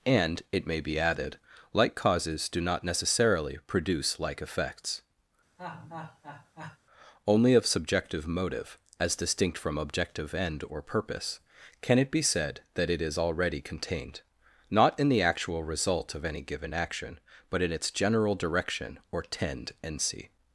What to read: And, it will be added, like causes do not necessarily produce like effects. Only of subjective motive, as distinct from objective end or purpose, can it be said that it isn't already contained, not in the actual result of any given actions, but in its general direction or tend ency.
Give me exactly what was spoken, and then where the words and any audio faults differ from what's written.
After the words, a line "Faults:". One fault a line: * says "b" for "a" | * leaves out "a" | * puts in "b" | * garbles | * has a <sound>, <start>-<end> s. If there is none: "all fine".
And, it may be added, like causes do not necessarily produce like effects. Only of subjective motive, as distinct from objective end or purpose, can it be said that it is already contained, not in the actual result of any given action, but in its general direction or tend ency.
Faults:
* says "may" for "will"
* has a laugh, 5.6-6.8 s
* says "is" for "isn't"
* says "action" for "actions"